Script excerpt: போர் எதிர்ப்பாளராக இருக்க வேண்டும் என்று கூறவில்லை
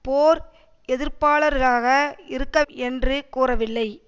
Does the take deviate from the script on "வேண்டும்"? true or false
true